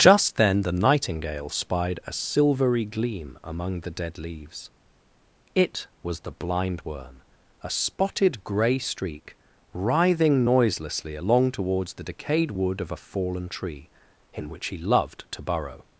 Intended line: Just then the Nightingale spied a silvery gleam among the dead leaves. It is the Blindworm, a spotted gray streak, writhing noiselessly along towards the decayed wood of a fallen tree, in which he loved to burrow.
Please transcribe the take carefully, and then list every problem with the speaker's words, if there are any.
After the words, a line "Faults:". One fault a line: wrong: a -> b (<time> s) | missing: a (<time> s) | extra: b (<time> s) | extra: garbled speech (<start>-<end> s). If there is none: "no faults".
Just then the Nightingale spied a silvery gleam among the dead leaves. It was the Blindworm, a spotted gray streak, writhing noiselessly along towards the decayed wood of a fallen tree, in which he loved to burrow.
Faults:
wrong: is -> was (6.0 s)